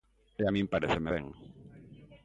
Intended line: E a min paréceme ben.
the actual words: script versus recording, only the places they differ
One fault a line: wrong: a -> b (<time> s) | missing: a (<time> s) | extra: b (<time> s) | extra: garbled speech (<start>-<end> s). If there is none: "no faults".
no faults